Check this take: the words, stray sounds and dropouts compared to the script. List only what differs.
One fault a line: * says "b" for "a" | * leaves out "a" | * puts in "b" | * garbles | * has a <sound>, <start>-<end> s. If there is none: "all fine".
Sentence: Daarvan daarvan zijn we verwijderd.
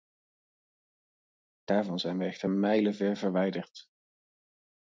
* leaves out "daarvan"
* puts in "echter mijlenver"